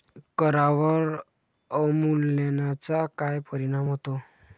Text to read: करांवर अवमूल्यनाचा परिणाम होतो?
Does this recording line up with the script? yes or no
no